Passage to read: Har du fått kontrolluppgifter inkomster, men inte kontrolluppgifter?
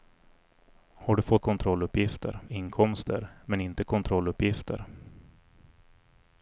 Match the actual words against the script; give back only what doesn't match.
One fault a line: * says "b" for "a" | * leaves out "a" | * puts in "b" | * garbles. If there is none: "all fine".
all fine